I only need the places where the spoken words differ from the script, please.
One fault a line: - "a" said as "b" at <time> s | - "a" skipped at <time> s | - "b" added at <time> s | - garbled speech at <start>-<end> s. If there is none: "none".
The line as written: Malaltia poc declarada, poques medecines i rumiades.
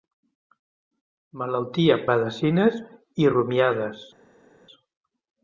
- "poc declarada poques" skipped at 2.0 s